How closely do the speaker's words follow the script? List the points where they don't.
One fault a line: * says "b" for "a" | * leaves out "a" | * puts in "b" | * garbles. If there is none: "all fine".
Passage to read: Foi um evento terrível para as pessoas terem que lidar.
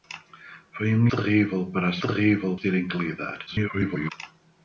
* leaves out "evento"
* says "terrível" for "pessoas"
* garbles